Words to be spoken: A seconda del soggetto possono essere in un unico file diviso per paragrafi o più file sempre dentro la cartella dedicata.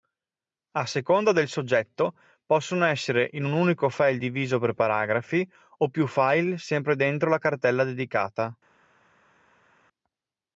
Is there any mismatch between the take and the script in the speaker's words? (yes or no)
no